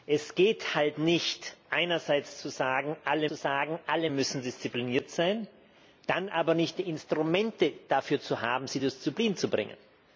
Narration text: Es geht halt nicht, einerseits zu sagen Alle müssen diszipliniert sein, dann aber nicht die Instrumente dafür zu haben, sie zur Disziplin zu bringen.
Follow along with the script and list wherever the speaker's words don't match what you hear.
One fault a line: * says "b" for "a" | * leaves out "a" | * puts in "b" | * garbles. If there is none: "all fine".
* puts in "zu sagen Alle"